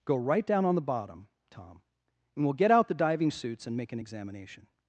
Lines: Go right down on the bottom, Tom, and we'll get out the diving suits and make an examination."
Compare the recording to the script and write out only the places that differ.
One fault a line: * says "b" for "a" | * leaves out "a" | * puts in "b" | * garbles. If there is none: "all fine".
all fine